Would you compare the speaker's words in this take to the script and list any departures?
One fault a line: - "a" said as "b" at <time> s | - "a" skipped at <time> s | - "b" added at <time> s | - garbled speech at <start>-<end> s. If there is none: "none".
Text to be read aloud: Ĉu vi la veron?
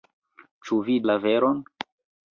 none